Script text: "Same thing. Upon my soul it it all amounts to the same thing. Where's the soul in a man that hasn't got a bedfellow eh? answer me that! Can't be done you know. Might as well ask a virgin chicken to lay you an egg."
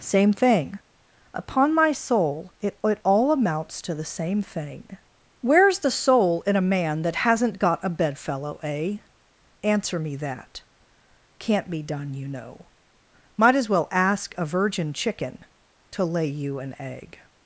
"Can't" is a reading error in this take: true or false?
false